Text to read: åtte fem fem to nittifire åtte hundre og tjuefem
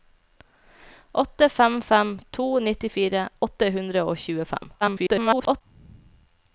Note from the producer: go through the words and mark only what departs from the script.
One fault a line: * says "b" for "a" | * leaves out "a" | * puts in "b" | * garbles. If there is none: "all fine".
* garbles